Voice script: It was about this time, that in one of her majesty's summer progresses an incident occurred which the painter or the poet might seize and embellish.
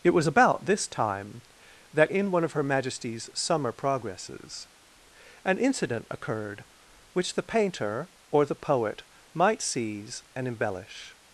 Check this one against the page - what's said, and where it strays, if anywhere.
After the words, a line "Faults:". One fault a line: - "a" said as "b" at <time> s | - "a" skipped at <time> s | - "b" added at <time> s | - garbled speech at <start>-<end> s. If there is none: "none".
It was about this time, that in one of her majesty's summer progresses an incident occurred which the painter or the poet might seize and embellish.
Faults:
none